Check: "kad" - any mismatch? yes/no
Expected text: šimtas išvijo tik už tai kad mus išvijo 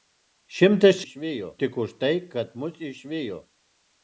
no